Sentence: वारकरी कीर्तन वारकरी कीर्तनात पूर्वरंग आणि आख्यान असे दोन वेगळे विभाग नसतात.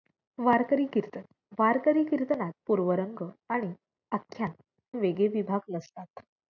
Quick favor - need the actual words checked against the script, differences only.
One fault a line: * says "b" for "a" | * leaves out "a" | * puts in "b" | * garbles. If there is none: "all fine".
* leaves out "असे दोन"